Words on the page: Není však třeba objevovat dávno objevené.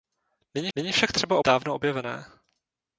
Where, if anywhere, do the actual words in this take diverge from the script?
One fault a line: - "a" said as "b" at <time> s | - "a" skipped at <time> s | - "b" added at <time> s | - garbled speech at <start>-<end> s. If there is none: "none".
- "není" added at 0.7 s
- "objevovat" skipped at 1.4 s